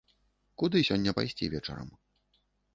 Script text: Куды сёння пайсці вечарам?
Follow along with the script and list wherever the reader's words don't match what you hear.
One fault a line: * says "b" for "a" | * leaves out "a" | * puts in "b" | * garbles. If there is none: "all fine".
all fine